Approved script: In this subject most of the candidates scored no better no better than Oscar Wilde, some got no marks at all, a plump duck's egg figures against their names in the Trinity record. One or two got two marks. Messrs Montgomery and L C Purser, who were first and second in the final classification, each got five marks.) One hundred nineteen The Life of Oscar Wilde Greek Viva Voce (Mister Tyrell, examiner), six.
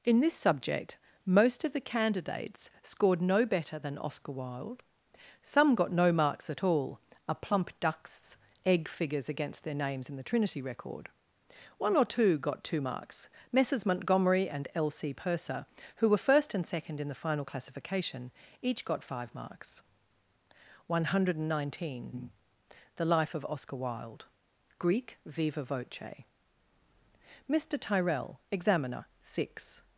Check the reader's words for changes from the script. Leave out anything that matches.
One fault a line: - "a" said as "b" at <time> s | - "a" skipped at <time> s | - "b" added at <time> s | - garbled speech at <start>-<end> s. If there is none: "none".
- "no better" skipped at 3.8 s